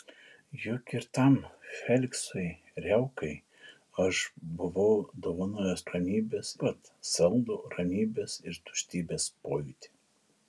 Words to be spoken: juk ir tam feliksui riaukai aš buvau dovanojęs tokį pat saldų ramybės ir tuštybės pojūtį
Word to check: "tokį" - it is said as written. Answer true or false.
false